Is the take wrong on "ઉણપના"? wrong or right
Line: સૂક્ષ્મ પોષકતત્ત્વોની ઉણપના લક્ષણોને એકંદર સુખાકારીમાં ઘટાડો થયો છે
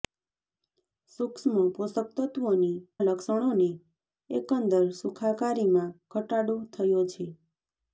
wrong